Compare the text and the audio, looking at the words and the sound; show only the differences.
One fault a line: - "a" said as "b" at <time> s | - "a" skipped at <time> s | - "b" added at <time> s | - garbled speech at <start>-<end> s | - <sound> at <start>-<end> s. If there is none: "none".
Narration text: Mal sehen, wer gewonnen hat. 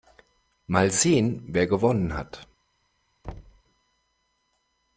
- thud at 3.2-3.6 s